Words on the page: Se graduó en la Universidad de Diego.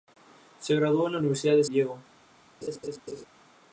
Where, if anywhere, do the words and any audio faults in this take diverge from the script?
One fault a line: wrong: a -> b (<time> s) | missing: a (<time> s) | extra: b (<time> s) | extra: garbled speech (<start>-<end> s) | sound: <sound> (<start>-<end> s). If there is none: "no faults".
sound: laugh (2.6-3.3 s)